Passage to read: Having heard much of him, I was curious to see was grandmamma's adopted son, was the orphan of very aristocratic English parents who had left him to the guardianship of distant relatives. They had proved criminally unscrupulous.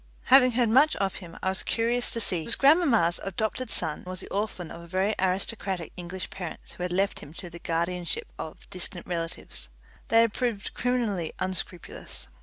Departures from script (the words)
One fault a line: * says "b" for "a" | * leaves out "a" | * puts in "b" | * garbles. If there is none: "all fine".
all fine